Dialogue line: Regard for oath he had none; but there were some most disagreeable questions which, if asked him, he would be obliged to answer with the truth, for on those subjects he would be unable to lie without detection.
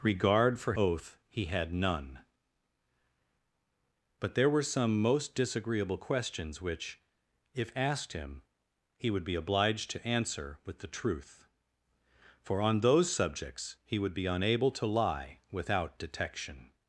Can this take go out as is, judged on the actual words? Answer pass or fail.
pass